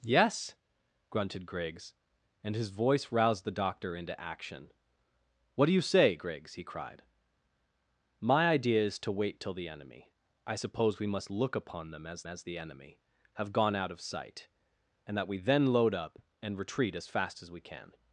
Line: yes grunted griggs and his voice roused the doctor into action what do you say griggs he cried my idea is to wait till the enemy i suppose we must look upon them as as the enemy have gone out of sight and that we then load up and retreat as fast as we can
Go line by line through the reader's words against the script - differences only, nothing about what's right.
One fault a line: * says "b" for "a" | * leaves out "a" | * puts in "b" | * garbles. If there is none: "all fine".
all fine